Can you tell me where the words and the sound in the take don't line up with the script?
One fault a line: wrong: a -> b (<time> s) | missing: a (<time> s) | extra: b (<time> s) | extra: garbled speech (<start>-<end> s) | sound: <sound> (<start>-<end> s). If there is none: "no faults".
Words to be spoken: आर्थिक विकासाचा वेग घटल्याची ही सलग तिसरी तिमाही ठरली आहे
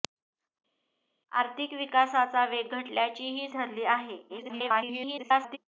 missing: सलग तिसरी तिमाही (3.5 s)
extra: garbled speech (4.3-5.6 s)